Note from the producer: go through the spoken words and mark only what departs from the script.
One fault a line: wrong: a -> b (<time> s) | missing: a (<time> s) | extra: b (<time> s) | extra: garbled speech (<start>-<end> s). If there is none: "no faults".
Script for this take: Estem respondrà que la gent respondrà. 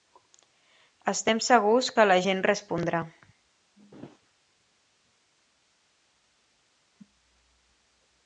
wrong: respondrà -> segurs (1.5 s)